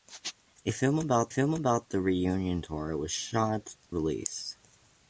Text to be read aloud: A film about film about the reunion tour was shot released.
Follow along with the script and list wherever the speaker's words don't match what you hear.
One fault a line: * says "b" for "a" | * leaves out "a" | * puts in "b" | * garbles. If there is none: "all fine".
all fine